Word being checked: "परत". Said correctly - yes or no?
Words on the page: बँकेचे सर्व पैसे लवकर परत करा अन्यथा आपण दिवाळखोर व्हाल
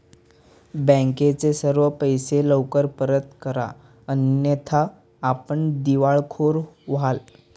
yes